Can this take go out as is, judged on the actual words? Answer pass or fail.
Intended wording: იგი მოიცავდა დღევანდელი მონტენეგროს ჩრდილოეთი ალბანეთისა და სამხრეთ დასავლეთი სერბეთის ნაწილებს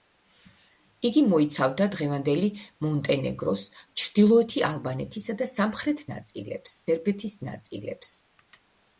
fail